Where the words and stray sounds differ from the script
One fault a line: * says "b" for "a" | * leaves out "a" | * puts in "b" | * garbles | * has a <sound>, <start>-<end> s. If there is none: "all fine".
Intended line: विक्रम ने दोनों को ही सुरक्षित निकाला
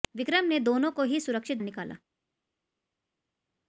all fine